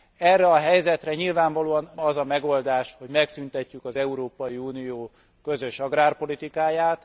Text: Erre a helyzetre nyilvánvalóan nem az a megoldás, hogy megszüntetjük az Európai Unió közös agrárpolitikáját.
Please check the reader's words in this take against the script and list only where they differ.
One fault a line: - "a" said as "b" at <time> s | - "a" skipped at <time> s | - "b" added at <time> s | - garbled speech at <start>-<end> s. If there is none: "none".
- "nem" skipped at 1.9 s